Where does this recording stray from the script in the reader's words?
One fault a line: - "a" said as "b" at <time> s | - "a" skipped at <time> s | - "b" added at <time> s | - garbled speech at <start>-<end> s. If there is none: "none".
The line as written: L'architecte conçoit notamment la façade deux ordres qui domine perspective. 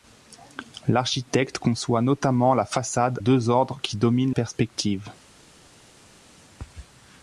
none